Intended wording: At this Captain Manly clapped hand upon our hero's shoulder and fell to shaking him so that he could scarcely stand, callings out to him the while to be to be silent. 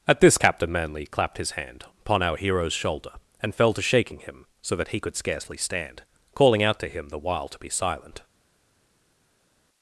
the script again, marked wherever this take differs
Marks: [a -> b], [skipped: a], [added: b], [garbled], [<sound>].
At this Captain Manly clapped [added: his] hand upon our hero's shoulder and fell to shaking him so that he could scarcely stand, [callings -> calling] out to him the while to be [skipped: to be] silent.